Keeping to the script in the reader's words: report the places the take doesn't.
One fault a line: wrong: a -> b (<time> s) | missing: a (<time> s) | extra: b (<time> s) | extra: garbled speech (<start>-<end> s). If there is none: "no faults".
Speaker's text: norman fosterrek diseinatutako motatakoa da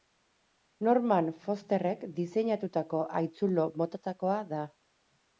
extra: haitzulo (3.2 s)